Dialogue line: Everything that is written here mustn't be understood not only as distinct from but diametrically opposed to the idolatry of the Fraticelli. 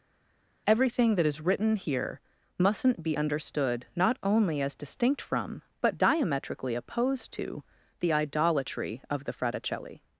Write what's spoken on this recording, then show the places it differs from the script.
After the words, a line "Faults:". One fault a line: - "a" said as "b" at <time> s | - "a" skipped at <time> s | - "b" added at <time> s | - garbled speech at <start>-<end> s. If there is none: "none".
Everything that is written here mustn't be understood not only as distinct from but diametrically opposed to the idolatry of the Fraticelli.
Faults:
none